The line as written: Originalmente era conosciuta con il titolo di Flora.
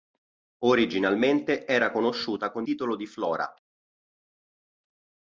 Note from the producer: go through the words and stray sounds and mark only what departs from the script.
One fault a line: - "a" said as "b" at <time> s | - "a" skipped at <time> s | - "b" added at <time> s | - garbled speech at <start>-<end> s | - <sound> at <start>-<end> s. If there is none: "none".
- "il" skipped at 2.6 s